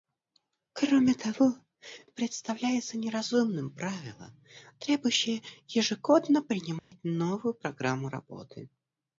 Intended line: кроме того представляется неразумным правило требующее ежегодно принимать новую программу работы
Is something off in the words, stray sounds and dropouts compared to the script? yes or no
yes